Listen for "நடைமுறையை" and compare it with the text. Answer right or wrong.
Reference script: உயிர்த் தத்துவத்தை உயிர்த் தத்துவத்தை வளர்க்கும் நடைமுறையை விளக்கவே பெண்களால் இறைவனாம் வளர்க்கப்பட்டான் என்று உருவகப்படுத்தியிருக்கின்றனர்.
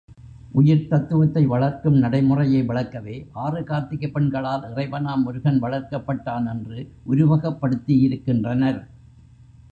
right